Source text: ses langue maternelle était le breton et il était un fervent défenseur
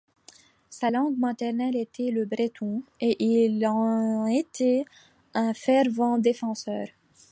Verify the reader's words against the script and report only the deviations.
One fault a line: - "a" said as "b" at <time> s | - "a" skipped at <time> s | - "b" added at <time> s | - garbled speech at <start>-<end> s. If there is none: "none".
- "ses" said as "sa" at 0.7 s
- "en" added at 3.7 s